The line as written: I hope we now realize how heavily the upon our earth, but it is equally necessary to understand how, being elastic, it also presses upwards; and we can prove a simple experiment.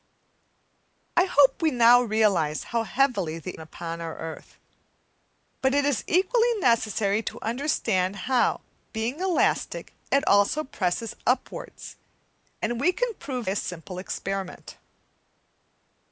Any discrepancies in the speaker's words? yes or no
no